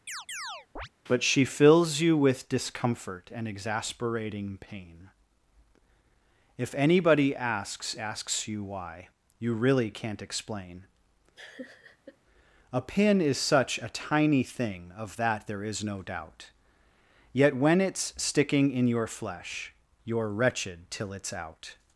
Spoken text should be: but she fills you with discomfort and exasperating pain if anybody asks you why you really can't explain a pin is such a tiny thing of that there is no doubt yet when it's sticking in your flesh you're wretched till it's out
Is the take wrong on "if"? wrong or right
right